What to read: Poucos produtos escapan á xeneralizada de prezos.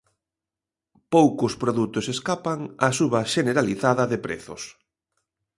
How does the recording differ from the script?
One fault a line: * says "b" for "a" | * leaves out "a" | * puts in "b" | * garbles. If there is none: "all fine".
* puts in "suba"